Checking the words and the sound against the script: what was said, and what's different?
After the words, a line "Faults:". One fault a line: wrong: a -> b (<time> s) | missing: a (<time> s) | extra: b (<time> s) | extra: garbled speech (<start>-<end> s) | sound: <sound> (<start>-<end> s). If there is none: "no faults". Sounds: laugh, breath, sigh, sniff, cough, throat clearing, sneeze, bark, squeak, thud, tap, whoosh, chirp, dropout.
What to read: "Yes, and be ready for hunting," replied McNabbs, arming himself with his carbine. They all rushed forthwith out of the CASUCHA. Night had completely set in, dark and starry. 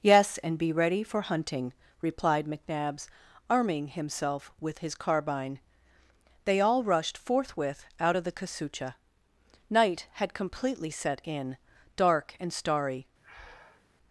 "Yes, and be ready for hunting," replied McNabbs, arming himself with his carbine. They all rushed forthwith out of the CASUCHA. Night had completely set in, dark and starry.
Faults:
sound: breath (13.2-13.9 s)